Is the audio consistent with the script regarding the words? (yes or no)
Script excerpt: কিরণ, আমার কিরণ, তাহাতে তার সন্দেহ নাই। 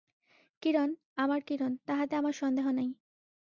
no